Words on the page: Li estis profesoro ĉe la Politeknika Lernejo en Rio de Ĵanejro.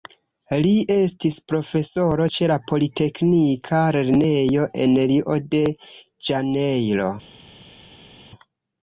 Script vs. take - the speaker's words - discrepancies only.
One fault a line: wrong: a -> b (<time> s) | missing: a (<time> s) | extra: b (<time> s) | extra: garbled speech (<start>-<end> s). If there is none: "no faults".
no faults